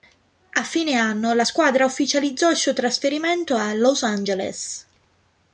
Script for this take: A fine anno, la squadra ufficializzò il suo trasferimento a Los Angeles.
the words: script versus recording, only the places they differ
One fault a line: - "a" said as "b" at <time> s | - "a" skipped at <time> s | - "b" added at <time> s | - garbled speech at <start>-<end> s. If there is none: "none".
none